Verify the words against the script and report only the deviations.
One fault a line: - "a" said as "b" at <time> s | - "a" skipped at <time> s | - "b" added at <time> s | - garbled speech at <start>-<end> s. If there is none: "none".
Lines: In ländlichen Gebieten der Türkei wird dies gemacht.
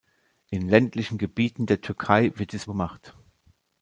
none